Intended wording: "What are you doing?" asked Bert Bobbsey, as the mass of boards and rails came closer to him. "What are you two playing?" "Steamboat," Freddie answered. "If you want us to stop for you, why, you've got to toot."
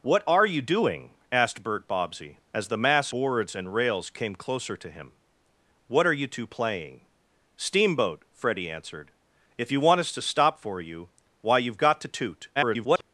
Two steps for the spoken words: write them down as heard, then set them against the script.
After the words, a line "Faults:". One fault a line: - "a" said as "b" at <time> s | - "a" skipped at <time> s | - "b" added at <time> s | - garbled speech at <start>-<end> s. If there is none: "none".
"What are you doing?" asked Bert Bobbsey, as the mass boards and rails came closer to him. "What are you two playing?" "Steamboat," Freddie answered. "If you want us to stop for you, why, you've got to toot." [garbled]
Faults:
- "of" skipped at 3.1 s
- garbled speech at 12.6-13.0 s